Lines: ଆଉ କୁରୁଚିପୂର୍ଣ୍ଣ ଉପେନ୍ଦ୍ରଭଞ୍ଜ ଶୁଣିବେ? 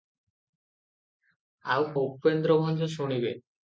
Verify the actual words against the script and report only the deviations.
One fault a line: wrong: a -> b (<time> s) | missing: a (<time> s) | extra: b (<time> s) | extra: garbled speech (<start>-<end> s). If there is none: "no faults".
missing: କୁରୁଚିପୂର୍ଣ୍ଣ (1.8 s)